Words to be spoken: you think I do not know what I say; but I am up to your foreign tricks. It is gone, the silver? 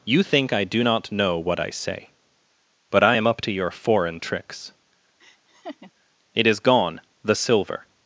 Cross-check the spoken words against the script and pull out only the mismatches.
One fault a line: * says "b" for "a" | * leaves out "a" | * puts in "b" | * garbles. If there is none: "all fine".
all fine